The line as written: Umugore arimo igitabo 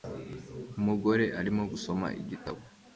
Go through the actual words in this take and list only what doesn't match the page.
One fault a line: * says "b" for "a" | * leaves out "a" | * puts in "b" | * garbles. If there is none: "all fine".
* puts in "gusoma"